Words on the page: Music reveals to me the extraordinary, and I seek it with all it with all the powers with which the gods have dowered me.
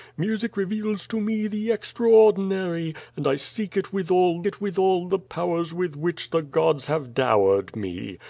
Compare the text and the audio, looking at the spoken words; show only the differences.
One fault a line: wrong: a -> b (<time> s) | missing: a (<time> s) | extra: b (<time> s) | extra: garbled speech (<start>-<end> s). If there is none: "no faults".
no faults